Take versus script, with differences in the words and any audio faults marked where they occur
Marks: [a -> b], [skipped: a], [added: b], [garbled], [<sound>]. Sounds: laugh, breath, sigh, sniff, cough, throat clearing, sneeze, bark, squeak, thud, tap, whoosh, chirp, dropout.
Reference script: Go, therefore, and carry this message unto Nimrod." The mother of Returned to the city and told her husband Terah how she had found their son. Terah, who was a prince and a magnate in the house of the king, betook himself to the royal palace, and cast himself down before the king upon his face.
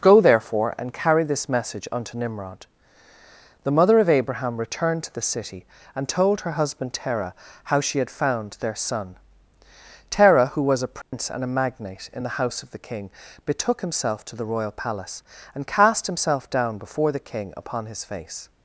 Go, therefore, and carry this message unto Nimrod." The mother of [added: Abraham] Returned to the city and told her husband Terah how she had found their son. Terah, who was a prince [dropout] and a magnate in the house of the king, betook himself to the royal palace, and cast himself down before the king upon his face.